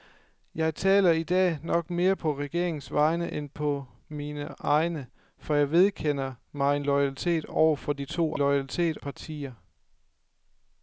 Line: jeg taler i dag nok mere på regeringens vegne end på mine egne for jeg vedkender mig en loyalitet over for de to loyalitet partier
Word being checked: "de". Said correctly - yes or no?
yes